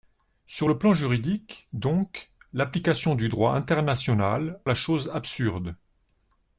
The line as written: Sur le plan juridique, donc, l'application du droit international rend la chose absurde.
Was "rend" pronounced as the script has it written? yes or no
no